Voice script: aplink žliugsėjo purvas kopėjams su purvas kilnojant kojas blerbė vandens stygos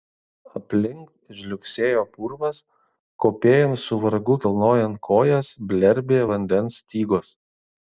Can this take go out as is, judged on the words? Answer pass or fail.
fail